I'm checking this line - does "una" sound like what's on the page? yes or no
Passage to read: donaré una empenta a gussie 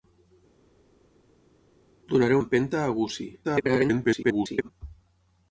no